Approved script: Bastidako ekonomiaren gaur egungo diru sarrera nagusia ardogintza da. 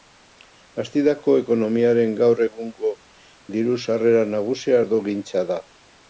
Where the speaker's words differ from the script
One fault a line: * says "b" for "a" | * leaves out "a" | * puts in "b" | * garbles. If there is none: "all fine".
all fine